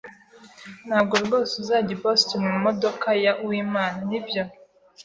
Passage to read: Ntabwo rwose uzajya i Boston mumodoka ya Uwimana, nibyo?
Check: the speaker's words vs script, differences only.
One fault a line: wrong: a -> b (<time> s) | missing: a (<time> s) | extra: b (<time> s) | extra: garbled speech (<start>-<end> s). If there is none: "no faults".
no faults